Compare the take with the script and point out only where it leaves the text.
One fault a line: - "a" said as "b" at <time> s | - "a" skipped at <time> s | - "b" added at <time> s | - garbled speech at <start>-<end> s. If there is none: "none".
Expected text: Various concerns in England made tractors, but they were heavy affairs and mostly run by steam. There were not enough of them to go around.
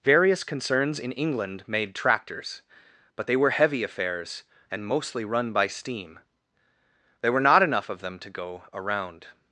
none